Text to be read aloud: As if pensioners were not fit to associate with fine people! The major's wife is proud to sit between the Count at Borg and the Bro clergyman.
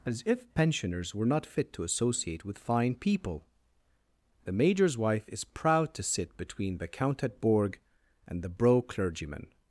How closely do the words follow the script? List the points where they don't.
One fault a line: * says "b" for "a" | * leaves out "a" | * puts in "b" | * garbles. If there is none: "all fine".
all fine